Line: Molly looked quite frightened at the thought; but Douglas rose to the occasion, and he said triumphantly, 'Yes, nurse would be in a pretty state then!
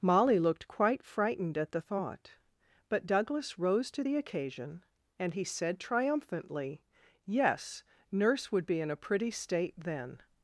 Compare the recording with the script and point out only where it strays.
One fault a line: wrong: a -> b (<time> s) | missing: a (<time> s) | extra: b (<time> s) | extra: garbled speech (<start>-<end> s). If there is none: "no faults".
no faults